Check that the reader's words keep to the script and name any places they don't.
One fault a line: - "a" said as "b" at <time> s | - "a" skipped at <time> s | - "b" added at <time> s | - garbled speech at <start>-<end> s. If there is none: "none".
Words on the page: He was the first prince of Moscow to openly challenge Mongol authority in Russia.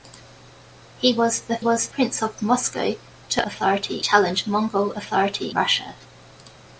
- "first" said as "was" at 1.6 s
- "openly" said as "authority" at 3.4 s
- "in" skipped at 5.5 s